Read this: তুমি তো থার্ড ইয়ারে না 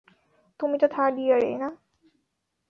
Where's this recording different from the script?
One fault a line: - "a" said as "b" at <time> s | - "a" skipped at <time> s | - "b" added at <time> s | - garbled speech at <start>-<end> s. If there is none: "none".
none